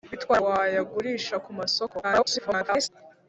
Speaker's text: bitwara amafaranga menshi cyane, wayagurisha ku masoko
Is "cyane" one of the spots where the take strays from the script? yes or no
yes